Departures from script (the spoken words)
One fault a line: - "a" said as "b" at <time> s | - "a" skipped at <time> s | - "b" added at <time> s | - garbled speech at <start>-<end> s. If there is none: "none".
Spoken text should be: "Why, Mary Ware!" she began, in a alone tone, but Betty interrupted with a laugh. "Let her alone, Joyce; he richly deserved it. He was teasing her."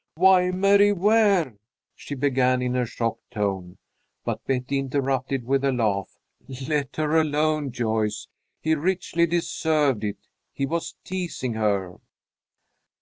- "alone" said as "shocked" at 2.9 s